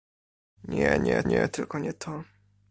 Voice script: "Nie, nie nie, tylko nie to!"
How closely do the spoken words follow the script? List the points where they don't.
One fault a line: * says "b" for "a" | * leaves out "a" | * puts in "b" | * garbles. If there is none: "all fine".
all fine